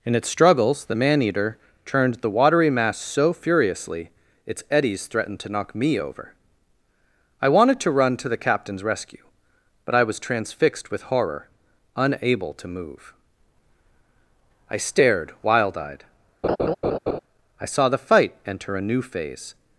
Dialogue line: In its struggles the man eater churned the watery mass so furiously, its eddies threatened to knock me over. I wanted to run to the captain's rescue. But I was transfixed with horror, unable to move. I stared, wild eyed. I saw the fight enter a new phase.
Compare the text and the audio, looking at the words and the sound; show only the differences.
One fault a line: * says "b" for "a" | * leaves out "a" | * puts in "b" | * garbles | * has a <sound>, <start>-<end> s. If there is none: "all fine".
* has a laugh, 16.4-17.2 s